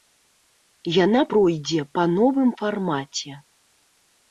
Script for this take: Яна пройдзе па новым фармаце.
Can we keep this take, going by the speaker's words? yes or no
yes